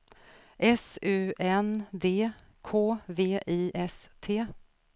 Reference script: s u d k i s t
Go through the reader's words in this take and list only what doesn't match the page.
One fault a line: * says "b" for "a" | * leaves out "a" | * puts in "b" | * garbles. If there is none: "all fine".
* puts in "n"
* puts in "v"